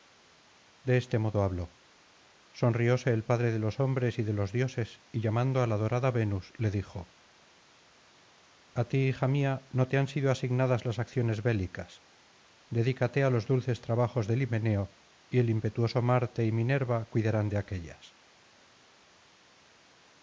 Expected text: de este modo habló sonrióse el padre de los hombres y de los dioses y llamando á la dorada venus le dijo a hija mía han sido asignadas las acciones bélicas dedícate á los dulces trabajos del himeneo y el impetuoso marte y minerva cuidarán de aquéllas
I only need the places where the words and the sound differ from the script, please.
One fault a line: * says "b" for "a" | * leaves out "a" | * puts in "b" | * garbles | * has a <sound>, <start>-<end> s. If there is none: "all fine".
* puts in "ti"
* puts in "no te"